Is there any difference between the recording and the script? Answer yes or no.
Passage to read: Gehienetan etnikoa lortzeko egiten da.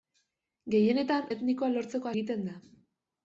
no